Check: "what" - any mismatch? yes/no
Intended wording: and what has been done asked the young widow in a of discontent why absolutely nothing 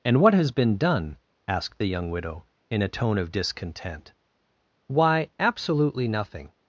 no